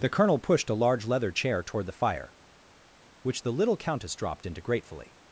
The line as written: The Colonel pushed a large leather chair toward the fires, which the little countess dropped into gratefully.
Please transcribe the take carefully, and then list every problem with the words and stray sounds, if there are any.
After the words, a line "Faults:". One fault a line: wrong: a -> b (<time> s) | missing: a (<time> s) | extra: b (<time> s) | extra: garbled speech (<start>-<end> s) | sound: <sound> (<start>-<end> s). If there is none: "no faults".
The Colonel pushed a large leather chair toward the fire, which the little countess dropped into gratefully.
Faults:
wrong: fires -> fire (1.9 s)